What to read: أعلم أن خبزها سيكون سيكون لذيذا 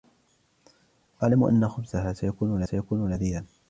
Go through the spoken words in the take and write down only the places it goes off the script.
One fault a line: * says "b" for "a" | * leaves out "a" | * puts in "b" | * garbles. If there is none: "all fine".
all fine